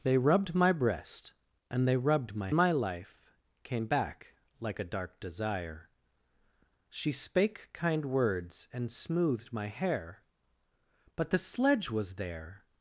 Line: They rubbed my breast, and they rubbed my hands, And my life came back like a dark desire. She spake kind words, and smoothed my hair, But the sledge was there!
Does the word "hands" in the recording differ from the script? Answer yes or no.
yes